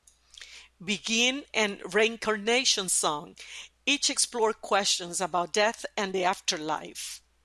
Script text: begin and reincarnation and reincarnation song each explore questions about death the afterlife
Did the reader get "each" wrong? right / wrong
right